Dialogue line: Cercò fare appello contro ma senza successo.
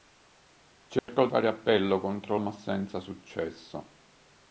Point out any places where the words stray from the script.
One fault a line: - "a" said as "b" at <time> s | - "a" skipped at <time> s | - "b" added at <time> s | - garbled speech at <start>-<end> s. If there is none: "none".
none